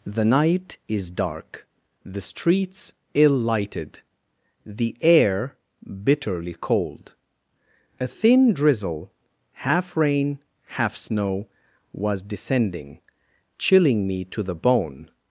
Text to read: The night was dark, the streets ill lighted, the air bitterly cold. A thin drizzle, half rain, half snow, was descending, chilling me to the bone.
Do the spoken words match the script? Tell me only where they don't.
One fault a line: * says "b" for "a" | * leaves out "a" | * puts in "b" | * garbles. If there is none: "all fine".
* says "is" for "was"